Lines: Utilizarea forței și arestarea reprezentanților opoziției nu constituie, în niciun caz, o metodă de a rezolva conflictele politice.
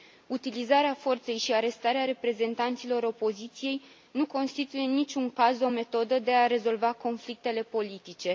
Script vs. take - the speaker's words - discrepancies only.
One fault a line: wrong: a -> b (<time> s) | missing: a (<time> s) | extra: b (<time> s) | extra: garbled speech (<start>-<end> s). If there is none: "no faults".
no faults